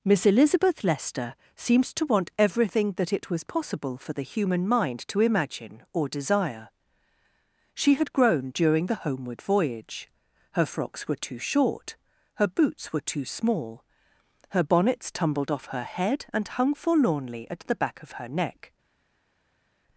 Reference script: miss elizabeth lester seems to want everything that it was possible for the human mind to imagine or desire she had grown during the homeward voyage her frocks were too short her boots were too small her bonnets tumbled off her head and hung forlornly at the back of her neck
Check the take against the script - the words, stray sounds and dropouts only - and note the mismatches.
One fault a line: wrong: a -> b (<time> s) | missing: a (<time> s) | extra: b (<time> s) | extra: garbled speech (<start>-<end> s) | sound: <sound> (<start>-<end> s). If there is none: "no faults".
no faults